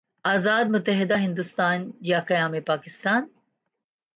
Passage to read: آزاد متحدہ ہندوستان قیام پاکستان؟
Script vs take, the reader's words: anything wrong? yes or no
yes